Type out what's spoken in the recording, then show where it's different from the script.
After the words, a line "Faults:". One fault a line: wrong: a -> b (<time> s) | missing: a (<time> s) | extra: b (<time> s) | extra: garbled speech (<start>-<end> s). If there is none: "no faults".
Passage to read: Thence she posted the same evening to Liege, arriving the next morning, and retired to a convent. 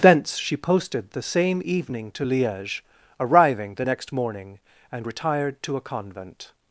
Thence she posted the same evening to Liege, arriving the next morning, and retired to a convent.
Faults:
no faults